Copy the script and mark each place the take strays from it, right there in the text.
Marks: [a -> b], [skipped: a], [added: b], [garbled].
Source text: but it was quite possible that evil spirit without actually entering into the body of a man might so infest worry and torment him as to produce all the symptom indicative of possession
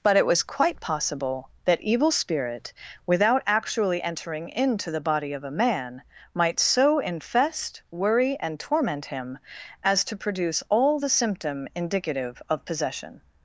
but it was quite possible that evil spirit without actually entering into the body of a man might so infest worry and torment him as to produce all the symptom indicative of possession